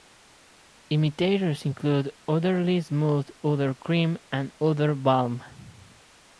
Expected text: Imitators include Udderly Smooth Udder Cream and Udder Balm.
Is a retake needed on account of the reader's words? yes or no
no